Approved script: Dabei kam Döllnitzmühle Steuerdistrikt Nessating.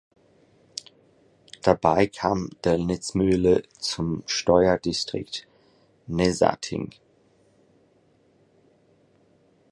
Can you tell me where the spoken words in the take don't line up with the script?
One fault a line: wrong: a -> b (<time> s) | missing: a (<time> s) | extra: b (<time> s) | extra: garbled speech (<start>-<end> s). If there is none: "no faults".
extra: zum (3.8 s)